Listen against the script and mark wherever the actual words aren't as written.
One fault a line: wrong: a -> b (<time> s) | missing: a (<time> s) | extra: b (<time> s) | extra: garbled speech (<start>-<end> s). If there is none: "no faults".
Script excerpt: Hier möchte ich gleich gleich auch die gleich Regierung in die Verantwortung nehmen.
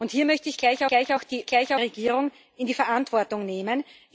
no faults